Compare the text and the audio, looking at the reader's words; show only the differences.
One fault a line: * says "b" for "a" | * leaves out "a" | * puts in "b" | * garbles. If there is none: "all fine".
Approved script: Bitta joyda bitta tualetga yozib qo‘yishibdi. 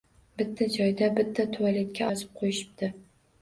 all fine